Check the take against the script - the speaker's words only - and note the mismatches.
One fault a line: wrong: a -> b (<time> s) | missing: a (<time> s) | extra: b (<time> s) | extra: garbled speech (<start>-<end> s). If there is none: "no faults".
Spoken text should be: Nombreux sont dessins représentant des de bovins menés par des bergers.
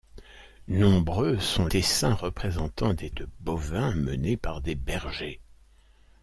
no faults